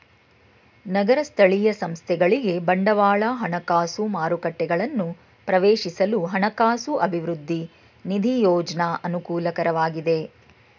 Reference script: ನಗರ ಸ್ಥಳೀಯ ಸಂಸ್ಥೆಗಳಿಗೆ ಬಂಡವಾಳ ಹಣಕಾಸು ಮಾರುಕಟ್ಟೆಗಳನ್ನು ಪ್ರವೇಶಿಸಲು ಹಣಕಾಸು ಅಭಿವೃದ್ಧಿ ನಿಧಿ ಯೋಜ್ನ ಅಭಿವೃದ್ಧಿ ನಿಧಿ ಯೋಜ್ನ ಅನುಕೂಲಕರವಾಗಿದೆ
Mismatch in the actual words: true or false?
true